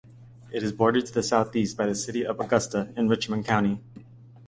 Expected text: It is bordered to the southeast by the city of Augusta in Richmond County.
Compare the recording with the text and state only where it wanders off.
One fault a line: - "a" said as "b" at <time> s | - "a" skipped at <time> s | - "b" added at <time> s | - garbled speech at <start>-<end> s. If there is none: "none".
none